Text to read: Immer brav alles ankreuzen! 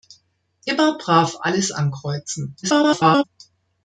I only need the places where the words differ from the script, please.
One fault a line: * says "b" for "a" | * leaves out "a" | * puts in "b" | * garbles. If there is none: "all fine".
* garbles